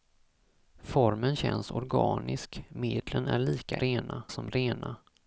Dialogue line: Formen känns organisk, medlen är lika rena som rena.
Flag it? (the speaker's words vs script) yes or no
no